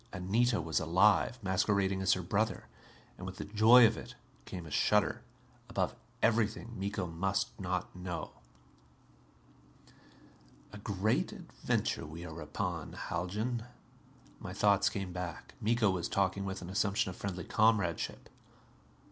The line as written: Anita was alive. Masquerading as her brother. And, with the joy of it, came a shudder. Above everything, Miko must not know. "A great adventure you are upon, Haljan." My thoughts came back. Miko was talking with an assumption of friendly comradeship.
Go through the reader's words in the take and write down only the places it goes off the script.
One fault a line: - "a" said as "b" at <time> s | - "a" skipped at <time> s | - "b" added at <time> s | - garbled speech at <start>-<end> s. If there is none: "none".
- "you" said as "we" at 12.0 s